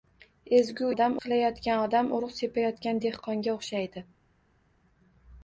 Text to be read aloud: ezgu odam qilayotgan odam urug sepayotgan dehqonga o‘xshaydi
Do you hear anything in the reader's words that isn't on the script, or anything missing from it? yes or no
no